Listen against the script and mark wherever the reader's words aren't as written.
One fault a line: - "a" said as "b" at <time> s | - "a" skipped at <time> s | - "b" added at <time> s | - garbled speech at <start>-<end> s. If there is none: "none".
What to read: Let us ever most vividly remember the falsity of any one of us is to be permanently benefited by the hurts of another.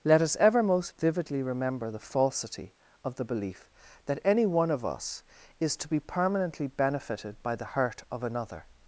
- "the belief that" added at 3.1 s
- "hurts" said as "hurt" at 7.8 s